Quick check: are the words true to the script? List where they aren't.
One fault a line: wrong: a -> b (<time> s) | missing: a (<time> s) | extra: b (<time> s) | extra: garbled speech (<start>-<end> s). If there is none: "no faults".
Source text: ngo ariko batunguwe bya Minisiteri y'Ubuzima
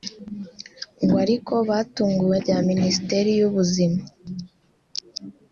no faults